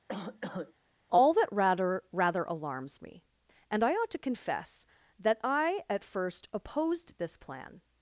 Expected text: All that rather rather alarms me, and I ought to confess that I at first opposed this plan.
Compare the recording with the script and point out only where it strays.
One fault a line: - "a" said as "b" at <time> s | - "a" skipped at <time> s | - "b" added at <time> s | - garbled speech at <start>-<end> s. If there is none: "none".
none